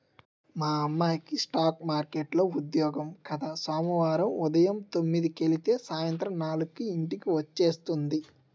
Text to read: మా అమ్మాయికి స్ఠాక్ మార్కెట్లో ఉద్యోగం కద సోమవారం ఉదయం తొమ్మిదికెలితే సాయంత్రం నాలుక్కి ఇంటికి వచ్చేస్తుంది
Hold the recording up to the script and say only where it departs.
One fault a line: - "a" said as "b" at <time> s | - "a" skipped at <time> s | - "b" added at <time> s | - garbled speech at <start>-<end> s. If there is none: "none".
none